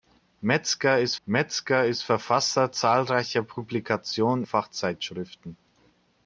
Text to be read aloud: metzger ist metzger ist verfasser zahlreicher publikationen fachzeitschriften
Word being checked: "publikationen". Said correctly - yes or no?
yes